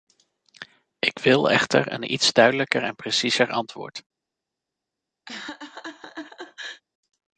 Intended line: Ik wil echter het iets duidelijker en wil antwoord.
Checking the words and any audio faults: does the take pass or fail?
fail